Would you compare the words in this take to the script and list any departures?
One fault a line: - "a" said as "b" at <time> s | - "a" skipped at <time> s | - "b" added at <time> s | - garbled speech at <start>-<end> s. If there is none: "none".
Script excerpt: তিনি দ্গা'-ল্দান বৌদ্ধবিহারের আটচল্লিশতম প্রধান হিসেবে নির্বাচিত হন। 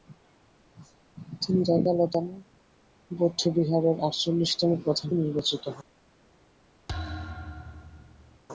- "হিসেবে" skipped at 5.1 s